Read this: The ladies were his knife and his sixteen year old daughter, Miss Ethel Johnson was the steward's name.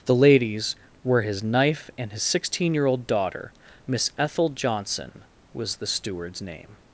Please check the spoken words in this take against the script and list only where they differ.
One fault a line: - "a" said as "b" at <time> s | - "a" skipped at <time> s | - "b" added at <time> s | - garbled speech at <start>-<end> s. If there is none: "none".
none